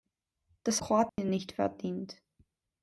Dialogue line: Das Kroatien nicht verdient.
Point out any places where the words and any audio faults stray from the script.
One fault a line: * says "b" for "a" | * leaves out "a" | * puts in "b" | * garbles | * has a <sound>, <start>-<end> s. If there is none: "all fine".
* has a dropout, 1.1-1.2 s